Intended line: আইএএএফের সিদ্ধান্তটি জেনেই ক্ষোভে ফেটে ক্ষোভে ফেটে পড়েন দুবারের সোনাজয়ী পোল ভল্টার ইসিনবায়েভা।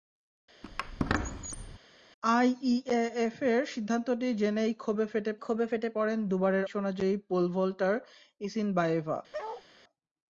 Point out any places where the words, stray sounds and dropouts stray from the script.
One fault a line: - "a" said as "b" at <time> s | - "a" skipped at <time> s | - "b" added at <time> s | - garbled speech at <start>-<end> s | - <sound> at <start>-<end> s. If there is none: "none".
- squeak at 0.6-1.8 s
- bark at 9.3-9.6 s